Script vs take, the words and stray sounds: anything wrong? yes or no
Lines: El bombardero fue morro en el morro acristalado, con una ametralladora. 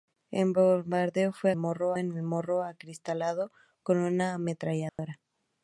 yes